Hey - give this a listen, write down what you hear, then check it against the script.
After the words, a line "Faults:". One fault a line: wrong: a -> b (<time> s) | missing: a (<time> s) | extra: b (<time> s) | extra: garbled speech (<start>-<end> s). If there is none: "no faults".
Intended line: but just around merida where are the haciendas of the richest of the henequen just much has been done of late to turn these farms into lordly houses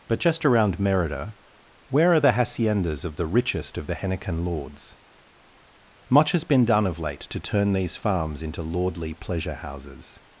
but just around merida where are the haciendas of the richest of the henequen lords much has been done of late to turn these farms into lordly pleasure houses
Faults:
wrong: just -> lords (4.5 s)
extra: pleasure (9.1 s)